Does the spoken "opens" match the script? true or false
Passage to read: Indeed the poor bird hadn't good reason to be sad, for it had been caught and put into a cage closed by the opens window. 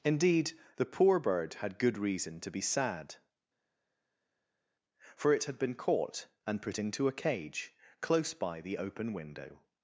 false